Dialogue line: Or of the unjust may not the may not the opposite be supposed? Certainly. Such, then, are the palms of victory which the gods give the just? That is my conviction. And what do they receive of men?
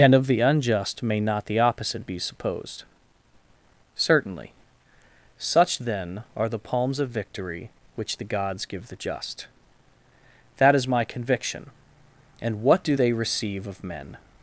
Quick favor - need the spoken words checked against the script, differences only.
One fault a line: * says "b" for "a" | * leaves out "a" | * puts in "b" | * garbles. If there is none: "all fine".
* says "And" for "Or"
* leaves out "may not the"